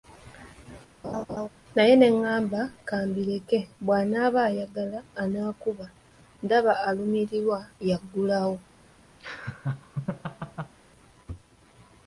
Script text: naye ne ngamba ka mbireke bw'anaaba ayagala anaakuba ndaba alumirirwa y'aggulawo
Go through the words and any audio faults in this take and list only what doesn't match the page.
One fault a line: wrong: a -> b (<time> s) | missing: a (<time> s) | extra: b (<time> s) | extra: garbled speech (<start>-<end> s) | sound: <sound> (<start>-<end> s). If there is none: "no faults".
sound: laugh (1.0-1.5 s)
sound: laugh (9.2-10.7 s)